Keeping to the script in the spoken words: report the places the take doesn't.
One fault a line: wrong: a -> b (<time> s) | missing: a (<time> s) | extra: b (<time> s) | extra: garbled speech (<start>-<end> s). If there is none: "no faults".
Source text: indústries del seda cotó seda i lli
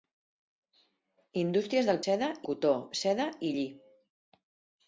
no faults